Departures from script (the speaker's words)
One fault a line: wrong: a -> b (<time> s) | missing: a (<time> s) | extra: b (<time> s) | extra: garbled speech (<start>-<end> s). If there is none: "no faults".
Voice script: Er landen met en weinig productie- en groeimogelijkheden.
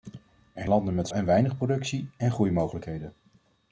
no faults